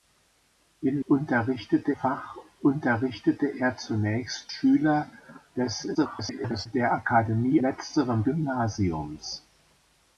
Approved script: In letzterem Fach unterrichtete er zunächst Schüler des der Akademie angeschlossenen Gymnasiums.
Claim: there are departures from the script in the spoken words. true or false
true